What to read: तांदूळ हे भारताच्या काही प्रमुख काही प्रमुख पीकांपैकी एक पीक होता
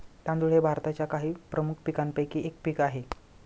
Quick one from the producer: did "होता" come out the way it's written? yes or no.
no